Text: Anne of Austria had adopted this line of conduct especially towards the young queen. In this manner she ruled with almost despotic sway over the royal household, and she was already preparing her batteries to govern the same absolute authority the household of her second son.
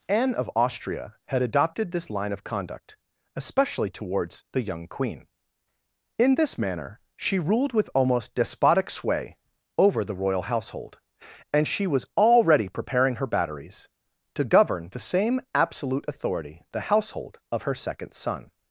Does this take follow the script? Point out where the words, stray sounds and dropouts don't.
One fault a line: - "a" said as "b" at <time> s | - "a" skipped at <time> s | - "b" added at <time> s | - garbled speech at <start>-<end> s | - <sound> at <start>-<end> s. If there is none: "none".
none